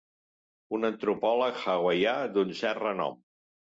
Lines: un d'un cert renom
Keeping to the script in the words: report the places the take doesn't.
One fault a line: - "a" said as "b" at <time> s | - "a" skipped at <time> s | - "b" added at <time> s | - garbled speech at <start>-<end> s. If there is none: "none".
- "antropòleg hawaià" added at 0.9 s